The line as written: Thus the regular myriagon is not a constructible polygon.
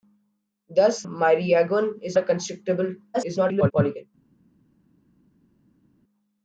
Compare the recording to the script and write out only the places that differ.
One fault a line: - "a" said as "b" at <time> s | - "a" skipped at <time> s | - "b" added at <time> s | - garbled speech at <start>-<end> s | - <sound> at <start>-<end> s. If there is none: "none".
- "the regular" skipped at 1.0 s
- "not" skipped at 2.2 s
- garbled speech at 3.1-3.7 s